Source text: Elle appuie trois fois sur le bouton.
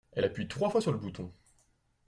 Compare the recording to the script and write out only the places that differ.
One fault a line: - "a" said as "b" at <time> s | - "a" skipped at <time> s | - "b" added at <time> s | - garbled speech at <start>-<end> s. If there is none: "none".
none